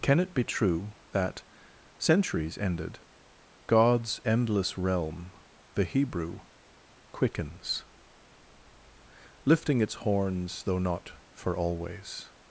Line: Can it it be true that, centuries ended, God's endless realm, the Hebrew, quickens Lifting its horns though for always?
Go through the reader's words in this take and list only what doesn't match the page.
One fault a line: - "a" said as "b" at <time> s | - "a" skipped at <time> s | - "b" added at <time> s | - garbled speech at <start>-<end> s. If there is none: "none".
- "it" skipped at 0.3 s
- "not" added at 10.8 s